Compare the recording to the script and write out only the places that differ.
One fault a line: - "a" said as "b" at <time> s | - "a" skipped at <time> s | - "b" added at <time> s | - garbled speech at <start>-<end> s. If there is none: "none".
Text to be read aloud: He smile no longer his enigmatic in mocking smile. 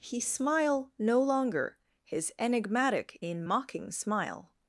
none